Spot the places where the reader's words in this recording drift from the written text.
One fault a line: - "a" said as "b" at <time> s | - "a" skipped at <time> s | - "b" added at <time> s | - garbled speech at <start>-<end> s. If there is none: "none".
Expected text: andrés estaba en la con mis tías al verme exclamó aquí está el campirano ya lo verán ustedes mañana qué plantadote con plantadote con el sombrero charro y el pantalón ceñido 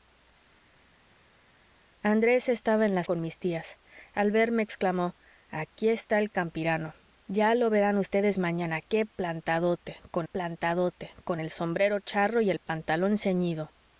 none